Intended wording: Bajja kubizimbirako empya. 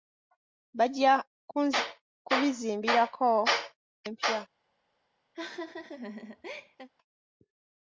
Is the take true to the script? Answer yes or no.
yes